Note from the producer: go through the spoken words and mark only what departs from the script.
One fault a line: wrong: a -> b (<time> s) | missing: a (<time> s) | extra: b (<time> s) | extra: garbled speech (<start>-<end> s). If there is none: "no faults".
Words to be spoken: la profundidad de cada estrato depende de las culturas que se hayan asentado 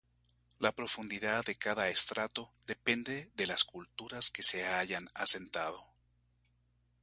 no faults